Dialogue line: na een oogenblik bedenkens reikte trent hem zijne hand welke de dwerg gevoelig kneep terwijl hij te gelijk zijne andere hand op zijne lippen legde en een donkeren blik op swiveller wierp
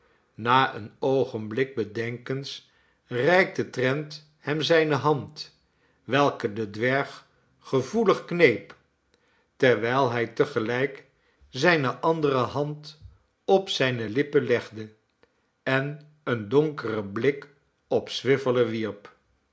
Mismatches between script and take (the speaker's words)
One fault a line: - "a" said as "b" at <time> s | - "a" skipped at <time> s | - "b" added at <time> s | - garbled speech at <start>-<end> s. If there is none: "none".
none